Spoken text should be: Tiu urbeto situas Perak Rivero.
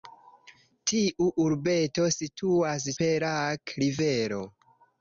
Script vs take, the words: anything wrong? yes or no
no